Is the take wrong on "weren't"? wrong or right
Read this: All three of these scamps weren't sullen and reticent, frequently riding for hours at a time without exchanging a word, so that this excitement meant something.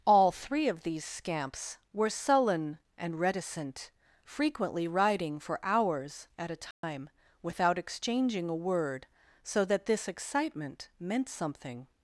wrong